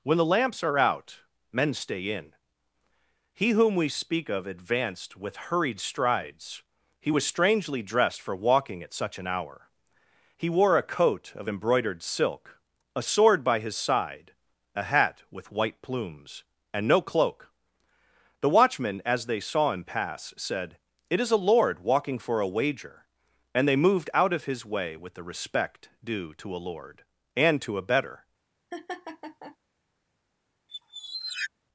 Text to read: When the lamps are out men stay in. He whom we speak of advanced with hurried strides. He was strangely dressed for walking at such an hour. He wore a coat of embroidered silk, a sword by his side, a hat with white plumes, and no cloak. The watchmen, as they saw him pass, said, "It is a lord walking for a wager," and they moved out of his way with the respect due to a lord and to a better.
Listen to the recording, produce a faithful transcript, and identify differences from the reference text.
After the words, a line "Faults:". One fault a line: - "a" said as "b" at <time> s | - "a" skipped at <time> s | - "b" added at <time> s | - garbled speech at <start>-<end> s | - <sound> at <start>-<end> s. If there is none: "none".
When the lamps are out men stay in. He whom we speak of advanced with hurried strides. He was strangely dressed for walking at such an hour. He wore a coat of embroidered silk, a sword by his side, a hat with white plumes, and no cloak. The watchmen, as they saw him pass, said, "It is a lord walking for a wager," and they moved out of his way with the respect due to a lord and to a better.
Faults:
- laugh at 28.7-29.6 s
- squeak at 30.7-31.5 s